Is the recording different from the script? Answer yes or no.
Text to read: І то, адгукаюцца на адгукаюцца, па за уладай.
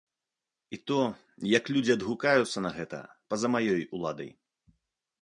yes